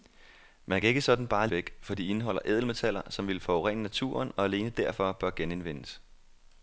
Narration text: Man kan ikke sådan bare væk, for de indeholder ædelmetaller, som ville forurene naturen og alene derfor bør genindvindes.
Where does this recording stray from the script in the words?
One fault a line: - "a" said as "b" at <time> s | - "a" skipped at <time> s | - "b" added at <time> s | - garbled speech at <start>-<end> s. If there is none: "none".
none